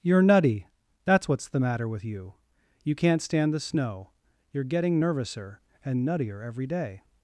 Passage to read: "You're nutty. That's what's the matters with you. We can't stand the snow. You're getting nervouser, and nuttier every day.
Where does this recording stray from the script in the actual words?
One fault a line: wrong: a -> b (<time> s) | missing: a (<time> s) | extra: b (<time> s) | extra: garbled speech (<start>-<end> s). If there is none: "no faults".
wrong: matters -> matter (1.6 s)
wrong: We -> You (2.8 s)